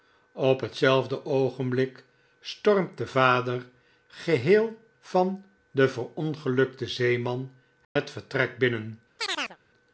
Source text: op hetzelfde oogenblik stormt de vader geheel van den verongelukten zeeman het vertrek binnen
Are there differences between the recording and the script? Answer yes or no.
no